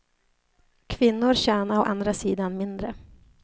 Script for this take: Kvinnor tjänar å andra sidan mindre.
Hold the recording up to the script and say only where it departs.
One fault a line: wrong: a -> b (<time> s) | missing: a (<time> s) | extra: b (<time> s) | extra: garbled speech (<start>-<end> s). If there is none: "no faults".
no faults